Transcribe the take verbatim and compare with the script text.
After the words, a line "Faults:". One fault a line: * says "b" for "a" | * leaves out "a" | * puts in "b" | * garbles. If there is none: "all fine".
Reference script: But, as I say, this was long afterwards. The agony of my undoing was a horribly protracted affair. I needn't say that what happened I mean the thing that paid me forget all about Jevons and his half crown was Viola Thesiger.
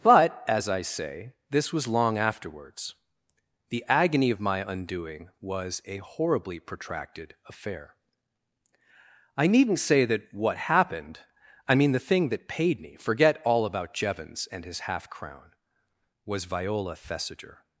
But, as I say, this was long afterwards. The agony of my undoing was a horribly protracted affair. I needn't say that what happened I mean the thing that paid me forget all about Jevons and his half crown was Viola Thesiger.
Faults:
all fine